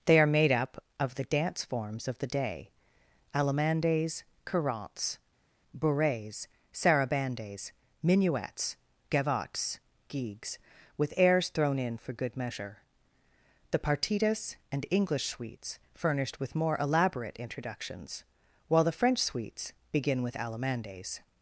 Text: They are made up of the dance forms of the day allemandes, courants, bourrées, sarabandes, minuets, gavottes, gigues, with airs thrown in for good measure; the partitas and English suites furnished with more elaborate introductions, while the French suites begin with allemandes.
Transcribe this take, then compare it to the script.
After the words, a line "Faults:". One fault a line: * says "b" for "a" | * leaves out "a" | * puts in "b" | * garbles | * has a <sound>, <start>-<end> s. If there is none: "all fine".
They are made up of the dance forms of the day allemandes, courants, bourrées, sarabandes, minuets, gavottes, gigues, with airs thrown in for good measure; the partitas and English suites furnished with more elaborate introductions, while the French suites begin with allemandes.
Faults:
all fine